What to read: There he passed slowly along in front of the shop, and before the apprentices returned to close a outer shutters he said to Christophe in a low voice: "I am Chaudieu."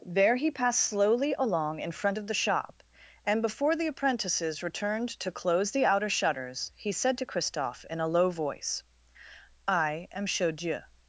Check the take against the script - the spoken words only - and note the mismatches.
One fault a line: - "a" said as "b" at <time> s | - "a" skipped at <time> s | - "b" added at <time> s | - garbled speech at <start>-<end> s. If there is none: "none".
- "a" said as "the" at 5.7 s